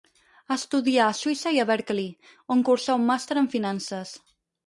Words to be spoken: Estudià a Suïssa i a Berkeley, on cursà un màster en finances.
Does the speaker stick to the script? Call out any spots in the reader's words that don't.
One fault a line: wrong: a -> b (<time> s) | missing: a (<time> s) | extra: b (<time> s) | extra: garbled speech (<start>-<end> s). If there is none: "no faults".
no faults